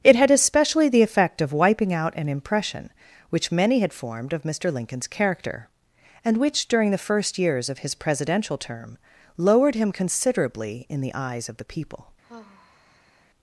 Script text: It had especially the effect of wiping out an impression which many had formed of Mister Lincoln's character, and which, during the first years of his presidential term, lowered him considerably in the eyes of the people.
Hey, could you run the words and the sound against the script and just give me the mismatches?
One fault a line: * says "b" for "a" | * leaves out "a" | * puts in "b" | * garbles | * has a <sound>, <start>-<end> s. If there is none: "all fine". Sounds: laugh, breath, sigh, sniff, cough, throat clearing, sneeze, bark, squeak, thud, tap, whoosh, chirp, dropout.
* has a sigh, 12.2-13.3 s